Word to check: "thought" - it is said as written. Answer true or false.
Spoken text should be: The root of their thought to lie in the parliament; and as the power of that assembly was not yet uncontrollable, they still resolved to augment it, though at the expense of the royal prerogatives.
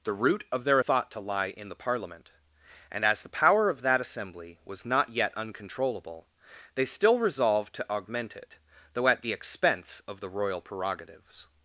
true